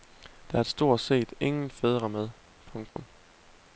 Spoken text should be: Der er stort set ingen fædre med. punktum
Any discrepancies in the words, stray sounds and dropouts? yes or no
yes